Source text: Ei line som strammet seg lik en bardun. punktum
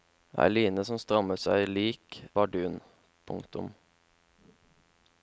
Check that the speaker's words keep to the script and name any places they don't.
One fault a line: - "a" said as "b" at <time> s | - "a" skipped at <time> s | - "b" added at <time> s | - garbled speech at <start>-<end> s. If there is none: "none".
- "en" skipped at 2.2 s